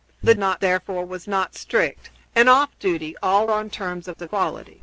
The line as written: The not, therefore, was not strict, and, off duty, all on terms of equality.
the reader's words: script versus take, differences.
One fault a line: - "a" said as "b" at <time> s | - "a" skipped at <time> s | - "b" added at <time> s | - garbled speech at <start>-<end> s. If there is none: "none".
none